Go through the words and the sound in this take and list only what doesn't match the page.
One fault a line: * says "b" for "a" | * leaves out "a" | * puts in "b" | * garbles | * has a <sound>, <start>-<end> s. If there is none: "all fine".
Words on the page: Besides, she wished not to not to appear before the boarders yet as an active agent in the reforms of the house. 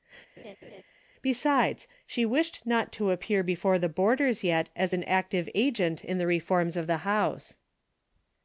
* has a laugh, 0.4-0.8 s
* leaves out "not to"